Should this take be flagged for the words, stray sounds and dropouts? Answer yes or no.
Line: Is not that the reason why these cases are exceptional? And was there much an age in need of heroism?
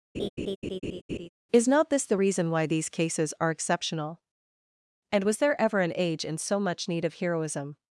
yes